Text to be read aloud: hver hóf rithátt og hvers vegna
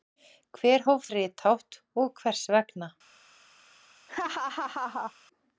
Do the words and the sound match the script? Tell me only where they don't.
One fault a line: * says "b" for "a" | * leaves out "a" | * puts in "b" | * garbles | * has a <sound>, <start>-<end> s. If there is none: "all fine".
* has a laugh, 4.1-5.1 s